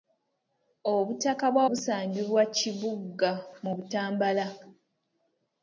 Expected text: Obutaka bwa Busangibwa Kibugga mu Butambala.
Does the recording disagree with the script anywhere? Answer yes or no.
no